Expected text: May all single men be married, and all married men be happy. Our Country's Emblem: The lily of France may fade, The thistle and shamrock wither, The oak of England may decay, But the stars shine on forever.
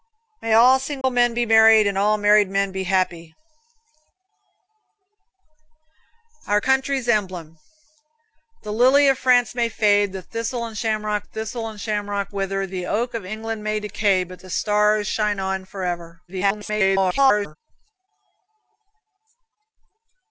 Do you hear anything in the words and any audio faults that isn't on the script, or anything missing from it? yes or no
yes